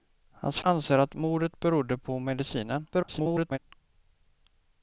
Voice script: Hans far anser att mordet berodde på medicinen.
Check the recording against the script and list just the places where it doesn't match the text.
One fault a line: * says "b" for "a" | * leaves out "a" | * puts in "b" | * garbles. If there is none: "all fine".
* leaves out "far"
* garbles